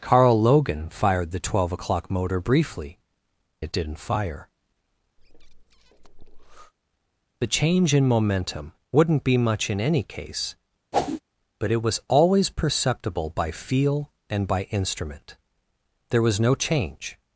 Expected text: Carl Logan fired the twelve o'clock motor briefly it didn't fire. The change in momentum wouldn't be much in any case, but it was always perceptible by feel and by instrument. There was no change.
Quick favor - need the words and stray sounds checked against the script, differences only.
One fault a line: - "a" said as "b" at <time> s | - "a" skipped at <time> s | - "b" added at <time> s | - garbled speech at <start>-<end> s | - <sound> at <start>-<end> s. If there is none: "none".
- breath at 5.2-6.7 s
- whoosh at 10.9-11.2 s